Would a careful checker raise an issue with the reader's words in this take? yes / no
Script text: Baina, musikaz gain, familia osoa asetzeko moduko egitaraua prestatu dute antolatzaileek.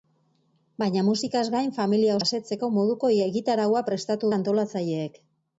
yes